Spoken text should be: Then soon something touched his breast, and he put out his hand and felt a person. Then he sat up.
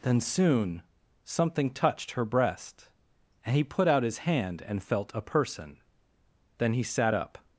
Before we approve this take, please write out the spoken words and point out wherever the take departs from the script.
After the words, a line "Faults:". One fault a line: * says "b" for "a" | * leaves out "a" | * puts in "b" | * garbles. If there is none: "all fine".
Then soon something touched her breast, and he put out his hand and felt a person. Then he sat up.
Faults:
* says "her" for "his"